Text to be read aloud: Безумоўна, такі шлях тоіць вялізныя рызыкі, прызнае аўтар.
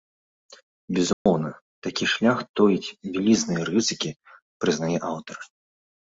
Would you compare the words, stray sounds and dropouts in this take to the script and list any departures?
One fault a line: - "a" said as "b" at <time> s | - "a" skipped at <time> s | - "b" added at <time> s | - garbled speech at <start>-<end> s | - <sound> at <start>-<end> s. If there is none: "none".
- dropout at 1.1-1.3 s